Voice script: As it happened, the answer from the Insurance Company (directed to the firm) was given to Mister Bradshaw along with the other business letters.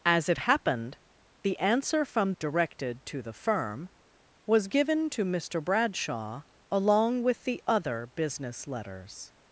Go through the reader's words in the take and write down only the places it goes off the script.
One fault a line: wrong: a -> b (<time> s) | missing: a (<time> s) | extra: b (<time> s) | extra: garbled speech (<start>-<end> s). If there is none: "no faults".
missing: the Insurance Company (2.3 s)